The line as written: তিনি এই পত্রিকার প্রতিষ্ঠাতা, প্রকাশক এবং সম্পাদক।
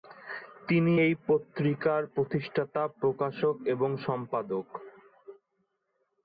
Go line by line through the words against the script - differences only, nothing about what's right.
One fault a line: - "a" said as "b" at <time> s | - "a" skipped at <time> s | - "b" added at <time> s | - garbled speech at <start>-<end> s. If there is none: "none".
none